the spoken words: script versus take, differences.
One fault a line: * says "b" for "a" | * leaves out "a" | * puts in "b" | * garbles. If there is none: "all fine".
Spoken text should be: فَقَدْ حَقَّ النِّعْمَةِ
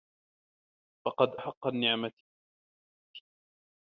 all fine